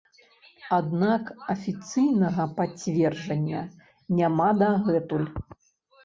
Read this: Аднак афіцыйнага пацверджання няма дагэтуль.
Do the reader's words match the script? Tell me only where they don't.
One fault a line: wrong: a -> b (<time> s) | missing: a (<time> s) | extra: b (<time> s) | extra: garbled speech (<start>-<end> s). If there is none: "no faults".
no faults